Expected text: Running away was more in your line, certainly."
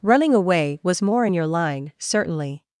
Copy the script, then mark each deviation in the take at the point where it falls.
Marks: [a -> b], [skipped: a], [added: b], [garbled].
Running away was more in your line, certainly."